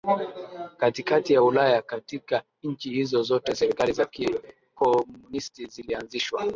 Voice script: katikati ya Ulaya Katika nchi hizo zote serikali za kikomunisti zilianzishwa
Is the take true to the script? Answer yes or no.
yes